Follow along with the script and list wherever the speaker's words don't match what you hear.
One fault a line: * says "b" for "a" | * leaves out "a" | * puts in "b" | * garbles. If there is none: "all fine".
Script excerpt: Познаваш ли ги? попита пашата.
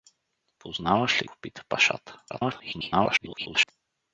* leaves out "ги"
* garbles